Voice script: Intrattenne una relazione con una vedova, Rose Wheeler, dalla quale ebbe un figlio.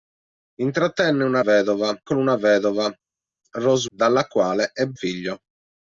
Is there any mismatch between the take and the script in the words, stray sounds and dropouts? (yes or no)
yes